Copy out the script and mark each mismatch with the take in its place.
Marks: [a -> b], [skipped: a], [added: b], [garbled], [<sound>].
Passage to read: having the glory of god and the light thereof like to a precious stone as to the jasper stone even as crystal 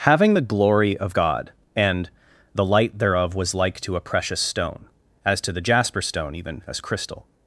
having the glory of god and the light thereof [added: was] like to a precious stone as to the jasper stone even as crystal